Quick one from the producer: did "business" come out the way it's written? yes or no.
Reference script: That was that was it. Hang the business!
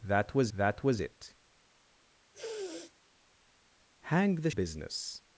yes